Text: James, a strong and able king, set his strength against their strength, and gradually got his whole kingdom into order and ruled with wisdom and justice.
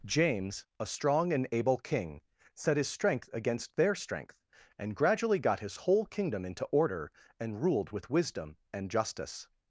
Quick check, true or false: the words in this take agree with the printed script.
true